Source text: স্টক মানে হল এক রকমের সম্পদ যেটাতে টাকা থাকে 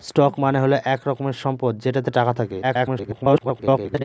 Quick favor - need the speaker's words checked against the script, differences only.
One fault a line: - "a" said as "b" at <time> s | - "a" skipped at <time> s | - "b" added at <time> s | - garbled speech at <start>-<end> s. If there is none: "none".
- garbled speech at 2.6-4.0 s